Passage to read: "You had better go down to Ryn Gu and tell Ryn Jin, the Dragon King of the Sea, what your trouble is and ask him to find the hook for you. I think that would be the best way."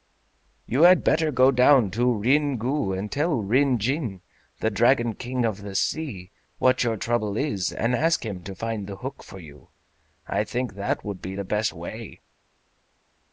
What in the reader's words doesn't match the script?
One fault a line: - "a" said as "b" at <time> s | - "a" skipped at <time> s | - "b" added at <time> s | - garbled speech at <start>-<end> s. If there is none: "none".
none